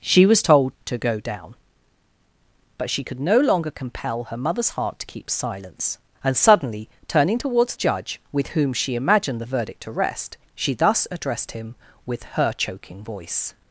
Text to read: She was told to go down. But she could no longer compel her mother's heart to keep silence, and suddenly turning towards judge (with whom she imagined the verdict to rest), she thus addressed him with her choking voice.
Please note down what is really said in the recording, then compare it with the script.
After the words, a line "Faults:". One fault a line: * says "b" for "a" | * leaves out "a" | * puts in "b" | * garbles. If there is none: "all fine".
She was told to go down. But she could no longer compel her mother's heart to keep silence, and suddenly turning towards judge (with whom she imagined the verdict to rest), she thus addressed him with her choking voice.
Faults:
all fine